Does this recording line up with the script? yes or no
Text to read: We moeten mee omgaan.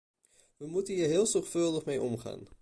no